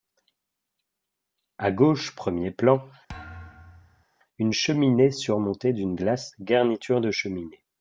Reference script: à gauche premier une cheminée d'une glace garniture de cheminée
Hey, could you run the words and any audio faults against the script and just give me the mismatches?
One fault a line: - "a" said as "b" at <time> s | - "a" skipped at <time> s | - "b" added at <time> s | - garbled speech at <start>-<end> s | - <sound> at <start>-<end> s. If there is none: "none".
- "plan" added at 2.5 s
- thud at 3.1-4.0 s
- "surmontée" added at 5.1 s